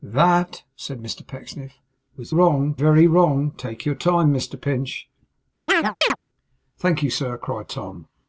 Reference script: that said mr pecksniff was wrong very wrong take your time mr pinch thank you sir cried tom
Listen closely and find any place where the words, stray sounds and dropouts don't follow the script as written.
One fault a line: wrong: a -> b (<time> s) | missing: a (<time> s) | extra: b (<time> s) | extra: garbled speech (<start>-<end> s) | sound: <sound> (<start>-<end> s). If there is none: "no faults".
sound: chirp (5.7-6.2 s)